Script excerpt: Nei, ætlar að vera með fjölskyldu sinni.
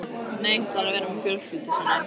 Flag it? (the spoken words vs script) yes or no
no